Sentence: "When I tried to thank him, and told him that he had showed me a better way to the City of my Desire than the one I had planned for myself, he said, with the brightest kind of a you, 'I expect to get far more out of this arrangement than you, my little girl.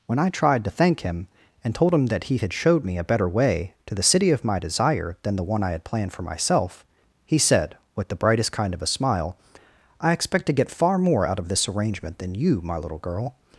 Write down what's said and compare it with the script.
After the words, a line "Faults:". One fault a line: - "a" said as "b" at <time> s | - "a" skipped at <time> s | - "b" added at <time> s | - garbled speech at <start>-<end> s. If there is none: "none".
"When I tried to thank him, and told him that he had showed me a better way to the City of my Desire than the one I had planned for myself, he said, with the brightest kind of a smile, 'I expect to get far more out of this arrangement than you, my little girl.
Faults:
- "you" said as "smile" at 8.9 s